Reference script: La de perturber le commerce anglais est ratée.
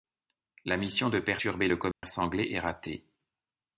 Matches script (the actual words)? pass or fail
fail